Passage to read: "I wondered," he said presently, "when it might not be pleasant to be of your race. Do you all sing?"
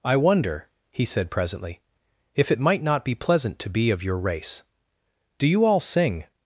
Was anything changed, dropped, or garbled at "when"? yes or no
yes